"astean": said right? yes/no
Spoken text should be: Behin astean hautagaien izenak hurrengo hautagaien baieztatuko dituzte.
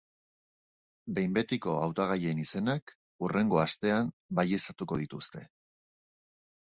no